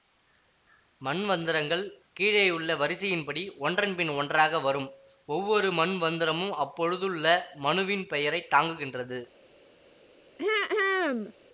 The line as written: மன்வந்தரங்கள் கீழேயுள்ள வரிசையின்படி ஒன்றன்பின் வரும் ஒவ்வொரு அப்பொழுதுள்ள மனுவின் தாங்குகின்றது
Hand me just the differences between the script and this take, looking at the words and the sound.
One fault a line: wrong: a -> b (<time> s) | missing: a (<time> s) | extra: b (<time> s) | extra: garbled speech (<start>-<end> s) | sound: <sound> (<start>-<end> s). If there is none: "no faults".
extra: ஒன்றாக (4.2 s)
extra: மன்வந்தரமும் (5.7 s)
extra: பெயரை (8.1 s)
sound: throat clearing (10.4-11.3 s)